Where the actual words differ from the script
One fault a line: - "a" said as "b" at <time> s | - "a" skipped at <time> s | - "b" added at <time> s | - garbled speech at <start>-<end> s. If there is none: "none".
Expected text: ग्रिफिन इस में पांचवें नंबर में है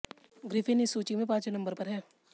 - "सूची" added at 0.9 s
- "में" said as "पर" at 1.7 s